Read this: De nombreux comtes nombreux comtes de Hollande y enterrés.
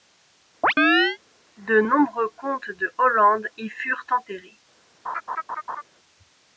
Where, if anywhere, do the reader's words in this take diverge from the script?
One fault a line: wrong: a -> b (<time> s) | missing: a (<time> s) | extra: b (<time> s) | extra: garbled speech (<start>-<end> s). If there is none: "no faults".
missing: nombreux comtes (2.7 s)
extra: furent (3.7 s)